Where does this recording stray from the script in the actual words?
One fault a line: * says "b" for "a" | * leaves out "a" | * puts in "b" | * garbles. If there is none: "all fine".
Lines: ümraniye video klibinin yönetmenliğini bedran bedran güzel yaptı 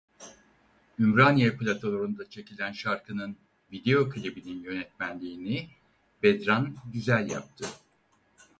* puts in "platolarında çekilen şarkının"
* leaves out "bedran"